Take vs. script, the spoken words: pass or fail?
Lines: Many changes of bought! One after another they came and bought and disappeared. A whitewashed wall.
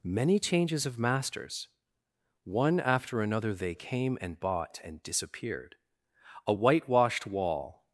fail